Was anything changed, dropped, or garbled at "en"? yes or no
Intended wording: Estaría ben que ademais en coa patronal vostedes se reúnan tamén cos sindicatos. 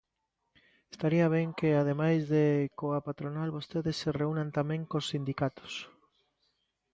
yes